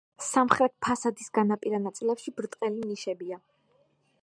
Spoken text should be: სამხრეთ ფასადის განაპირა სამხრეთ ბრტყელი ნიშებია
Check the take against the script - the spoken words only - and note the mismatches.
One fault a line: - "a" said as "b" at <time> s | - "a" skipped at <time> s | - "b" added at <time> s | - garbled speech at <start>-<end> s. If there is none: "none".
- "სამხრეთ" said as "ნაწილებში" at 1.8 s